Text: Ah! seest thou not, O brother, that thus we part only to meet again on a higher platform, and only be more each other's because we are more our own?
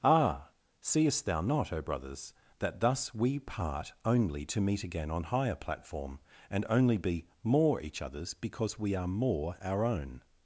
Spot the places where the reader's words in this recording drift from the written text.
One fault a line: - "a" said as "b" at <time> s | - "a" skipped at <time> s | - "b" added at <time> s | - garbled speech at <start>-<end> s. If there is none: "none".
- "brother" said as "brothers" at 1.8 s
- "a" skipped at 5.2 s